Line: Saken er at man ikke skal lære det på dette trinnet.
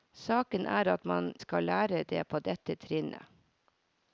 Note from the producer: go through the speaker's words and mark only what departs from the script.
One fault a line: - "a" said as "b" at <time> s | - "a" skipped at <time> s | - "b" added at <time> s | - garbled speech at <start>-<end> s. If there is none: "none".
- "ikke" skipped at 1.3 s